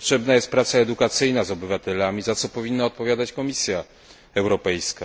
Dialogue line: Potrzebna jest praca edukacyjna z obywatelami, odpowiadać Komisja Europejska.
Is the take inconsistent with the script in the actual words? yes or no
yes